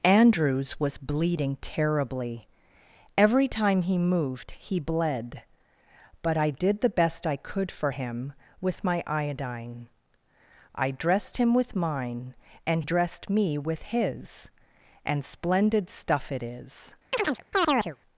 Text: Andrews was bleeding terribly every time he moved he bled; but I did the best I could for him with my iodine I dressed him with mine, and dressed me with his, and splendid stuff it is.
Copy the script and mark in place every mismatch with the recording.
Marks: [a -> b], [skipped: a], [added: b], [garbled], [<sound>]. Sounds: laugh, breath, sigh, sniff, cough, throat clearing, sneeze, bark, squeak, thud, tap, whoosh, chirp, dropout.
Andrews was bleeding terribly every time he moved he bled; but I did the best I could for him with my iodine I dressed him with mine, and dressed me with his, and splendid stuff it is. [chirp]